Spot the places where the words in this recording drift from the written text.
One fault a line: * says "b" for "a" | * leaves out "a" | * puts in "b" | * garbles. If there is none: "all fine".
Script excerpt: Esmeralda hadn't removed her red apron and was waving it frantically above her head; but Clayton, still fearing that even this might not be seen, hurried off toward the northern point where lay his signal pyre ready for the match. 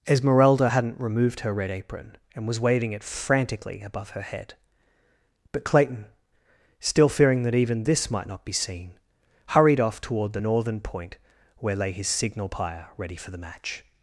all fine